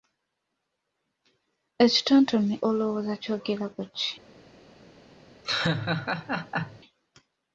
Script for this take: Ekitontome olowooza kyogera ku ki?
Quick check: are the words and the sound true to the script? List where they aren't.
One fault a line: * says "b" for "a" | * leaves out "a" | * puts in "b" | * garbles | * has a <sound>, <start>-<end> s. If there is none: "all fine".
* has a laugh, 5.4-6.8 s